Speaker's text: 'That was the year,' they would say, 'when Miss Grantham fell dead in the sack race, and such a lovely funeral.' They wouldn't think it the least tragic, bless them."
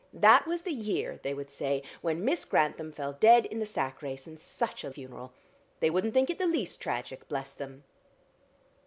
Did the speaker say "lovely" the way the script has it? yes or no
no